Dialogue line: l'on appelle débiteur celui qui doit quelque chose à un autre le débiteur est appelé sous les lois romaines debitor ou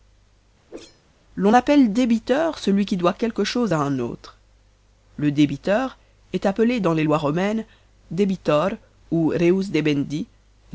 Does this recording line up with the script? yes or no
no